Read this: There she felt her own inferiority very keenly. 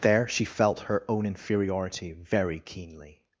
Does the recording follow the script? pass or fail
pass